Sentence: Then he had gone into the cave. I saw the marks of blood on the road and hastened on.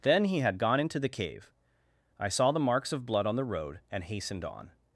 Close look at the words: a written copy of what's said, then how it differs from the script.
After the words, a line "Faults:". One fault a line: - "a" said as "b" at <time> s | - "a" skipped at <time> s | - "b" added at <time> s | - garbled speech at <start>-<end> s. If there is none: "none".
Then he had gone into the cave. I saw the marks of blood on the road and hastened on.
Faults:
none